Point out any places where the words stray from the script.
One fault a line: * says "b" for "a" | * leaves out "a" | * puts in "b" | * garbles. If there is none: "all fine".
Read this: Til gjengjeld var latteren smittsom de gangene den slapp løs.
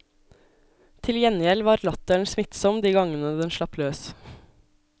all fine